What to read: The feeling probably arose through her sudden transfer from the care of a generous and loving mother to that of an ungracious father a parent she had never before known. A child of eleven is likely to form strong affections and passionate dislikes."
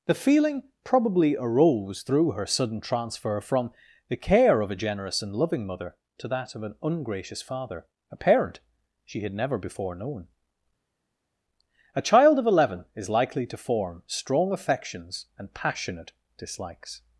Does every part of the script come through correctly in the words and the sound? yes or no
yes